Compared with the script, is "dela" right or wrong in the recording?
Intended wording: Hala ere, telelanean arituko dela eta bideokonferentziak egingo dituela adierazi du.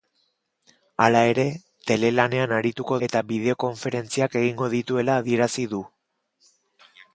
wrong